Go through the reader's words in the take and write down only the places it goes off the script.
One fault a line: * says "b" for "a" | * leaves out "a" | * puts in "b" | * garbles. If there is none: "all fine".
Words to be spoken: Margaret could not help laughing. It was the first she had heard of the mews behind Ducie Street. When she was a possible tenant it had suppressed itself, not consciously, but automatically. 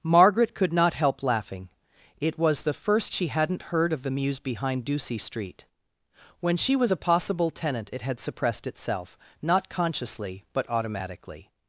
* says "hadn't" for "had"